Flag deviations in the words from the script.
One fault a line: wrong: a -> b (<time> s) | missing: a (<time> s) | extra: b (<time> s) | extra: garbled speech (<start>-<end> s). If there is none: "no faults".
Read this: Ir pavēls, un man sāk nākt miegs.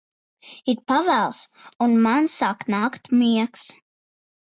no faults